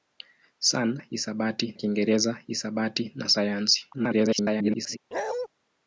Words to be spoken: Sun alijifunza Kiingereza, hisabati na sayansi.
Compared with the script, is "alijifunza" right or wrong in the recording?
wrong